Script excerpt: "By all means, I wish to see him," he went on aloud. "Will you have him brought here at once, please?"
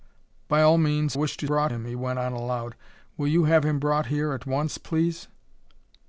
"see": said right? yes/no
no